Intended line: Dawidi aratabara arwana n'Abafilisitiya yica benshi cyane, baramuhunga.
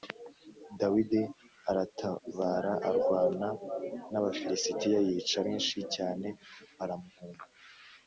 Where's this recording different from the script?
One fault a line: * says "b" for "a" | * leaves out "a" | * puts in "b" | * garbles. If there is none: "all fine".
all fine